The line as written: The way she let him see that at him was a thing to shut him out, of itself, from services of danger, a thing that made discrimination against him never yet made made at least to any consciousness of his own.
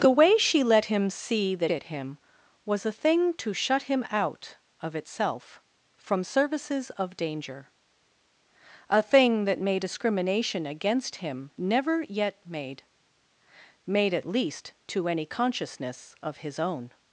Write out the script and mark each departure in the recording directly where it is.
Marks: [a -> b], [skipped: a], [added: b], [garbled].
The way she let him see that at him was a thing to shut him out, of itself, from services of danger, a thing that made discrimination against him never yet made made at least to any consciousness of his own.